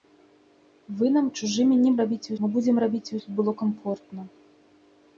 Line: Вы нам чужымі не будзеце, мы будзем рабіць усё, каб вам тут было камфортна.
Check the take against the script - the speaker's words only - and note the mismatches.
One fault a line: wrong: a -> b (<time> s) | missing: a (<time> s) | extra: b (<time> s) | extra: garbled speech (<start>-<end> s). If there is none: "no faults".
wrong: будзеце -> рабіць (2.0 s)
missing: усё каб вам (3.1 s)